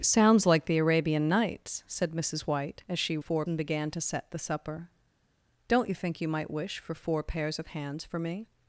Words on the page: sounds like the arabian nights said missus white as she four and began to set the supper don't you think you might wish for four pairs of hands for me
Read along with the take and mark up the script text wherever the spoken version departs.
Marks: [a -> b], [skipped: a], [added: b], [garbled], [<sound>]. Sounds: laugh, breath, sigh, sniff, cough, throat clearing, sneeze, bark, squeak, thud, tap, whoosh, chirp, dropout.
sounds like the arabian nights said missus white as she four and began to set the supper don't you think you might wish for four pairs of hands for me